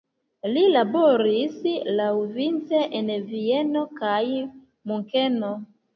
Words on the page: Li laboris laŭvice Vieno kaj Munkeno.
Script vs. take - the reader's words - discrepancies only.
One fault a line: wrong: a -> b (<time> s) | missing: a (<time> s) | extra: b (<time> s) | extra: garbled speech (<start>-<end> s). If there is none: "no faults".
extra: en (3.0 s)